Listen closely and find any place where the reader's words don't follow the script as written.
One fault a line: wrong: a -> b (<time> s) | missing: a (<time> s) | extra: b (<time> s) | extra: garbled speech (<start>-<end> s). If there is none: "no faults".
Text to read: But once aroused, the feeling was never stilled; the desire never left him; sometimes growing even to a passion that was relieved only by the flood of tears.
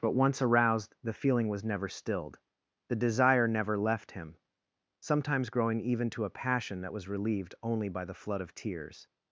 no faults